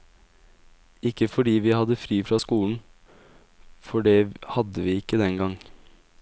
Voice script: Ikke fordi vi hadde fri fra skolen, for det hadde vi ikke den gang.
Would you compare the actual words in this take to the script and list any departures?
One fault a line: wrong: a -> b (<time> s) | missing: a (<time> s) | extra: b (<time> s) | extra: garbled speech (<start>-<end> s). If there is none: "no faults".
no faults